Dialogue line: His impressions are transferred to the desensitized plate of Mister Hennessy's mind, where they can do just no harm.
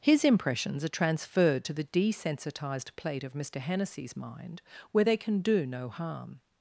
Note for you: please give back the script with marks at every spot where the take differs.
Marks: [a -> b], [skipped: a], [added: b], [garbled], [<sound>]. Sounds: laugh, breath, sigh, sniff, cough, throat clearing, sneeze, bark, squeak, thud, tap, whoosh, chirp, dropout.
His impressions are transferred to the desensitized plate of Mister Hennessy's mind, where they can do [skipped: just] no harm.